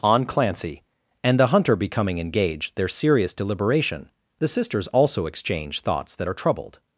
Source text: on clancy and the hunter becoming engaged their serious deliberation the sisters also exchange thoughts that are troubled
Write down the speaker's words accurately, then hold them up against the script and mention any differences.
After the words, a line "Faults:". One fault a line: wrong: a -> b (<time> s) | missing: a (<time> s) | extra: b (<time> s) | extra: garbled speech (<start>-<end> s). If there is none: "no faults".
on clancy and the hunter becoming engaged their serious deliberation the sisters also exchange thoughts that are troubled
Faults:
no faults